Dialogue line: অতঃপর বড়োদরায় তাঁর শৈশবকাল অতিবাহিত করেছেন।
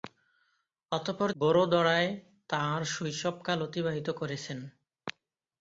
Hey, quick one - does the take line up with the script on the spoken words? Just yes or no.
yes